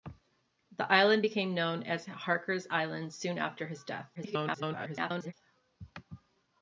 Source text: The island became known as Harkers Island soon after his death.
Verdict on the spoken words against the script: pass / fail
fail